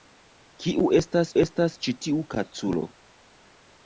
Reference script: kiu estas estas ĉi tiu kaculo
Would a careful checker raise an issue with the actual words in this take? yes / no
no